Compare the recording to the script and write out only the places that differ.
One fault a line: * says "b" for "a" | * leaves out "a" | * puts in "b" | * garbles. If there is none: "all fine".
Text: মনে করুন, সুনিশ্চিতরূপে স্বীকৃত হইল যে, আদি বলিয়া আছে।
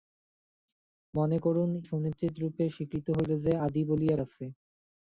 all fine